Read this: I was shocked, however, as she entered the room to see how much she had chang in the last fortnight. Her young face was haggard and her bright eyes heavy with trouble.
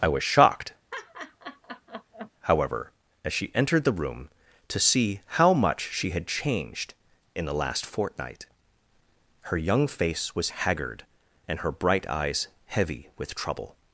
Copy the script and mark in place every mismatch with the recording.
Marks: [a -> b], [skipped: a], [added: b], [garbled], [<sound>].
I was shocked, [laugh] however, as she entered the room to see how much she had [chang -> changed] in the last fortnight. Her young face was haggard and her bright eyes heavy with trouble.